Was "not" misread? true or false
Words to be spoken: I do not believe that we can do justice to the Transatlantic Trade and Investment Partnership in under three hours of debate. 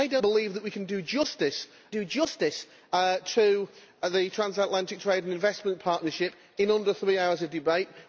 true